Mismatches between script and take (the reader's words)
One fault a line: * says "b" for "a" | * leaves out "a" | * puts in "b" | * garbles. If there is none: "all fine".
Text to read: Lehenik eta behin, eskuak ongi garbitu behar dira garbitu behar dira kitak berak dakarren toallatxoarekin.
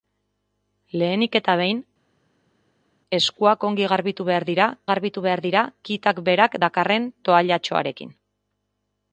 all fine